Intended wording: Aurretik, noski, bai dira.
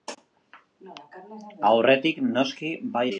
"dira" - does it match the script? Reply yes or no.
yes